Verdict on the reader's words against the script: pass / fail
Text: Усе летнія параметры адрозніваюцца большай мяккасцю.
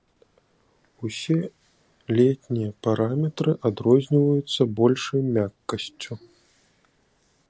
pass